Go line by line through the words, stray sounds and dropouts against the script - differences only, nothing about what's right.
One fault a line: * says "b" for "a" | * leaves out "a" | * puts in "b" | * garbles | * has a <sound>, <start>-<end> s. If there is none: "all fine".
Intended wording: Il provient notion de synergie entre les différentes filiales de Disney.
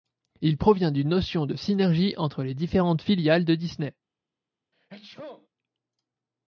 * puts in "d'une"
* has a sneeze, 4.7-5.5 s